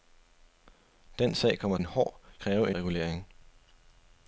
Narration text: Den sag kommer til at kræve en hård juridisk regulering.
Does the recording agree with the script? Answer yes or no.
no